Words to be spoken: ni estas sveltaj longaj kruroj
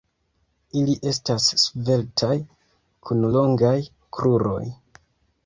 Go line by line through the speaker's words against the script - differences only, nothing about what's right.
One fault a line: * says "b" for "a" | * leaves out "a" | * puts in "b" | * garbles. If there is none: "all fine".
* says "ili" for "ni"
* puts in "kun"